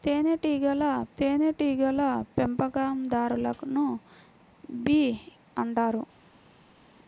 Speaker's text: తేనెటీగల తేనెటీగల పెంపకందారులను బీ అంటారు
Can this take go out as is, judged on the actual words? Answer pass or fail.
pass